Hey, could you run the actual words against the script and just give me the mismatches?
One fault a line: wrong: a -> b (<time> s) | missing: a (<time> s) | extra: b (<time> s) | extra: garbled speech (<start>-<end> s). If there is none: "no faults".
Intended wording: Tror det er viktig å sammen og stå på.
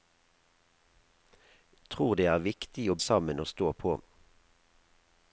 no faults